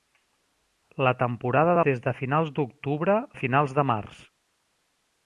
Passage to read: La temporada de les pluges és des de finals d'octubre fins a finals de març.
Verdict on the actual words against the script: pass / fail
fail